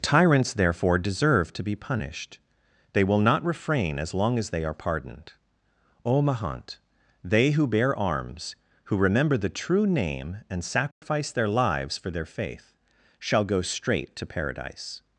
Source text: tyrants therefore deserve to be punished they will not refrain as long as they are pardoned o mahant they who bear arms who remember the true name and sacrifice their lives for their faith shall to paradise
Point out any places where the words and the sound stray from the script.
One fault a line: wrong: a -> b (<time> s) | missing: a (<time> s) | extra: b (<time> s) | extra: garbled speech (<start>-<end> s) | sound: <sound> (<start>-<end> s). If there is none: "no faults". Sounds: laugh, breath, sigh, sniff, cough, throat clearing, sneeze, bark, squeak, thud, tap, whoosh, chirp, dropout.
sound: dropout (10.9-11.0 s)
extra: go straight (13.4 s)